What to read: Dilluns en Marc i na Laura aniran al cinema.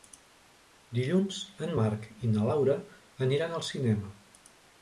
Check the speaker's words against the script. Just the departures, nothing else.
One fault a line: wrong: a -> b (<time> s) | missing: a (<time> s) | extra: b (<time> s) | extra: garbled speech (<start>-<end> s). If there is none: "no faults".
no faults